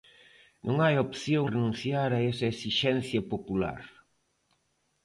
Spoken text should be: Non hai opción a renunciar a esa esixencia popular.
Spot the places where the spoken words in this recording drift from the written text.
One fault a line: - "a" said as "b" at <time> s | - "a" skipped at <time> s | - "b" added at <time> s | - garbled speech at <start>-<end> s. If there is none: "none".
- "a" skipped at 1.4 s